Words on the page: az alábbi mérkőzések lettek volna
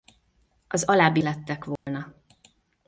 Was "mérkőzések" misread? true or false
true